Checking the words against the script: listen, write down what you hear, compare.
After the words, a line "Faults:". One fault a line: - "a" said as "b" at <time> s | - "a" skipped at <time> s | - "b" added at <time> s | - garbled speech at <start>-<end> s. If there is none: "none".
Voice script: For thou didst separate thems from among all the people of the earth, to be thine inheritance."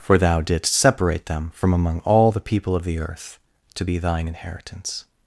For thou didst separate them from among all the people of the earth, to be thine inheritance."
Faults:
- "thems" said as "them" at 1.3 s